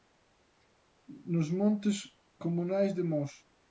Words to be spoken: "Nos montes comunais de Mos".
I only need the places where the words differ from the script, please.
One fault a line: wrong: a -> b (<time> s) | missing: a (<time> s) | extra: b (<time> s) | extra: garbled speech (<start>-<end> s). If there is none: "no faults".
no faults